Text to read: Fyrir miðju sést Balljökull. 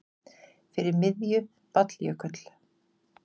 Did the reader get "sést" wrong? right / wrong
wrong